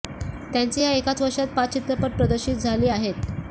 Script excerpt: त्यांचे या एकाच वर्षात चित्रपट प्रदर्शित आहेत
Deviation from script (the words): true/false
true